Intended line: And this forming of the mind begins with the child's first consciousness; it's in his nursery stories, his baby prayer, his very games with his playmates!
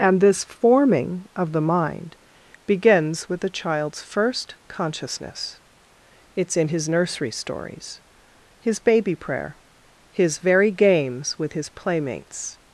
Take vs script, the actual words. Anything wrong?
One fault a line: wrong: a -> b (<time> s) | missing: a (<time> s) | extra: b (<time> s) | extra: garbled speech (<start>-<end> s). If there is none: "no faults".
no faults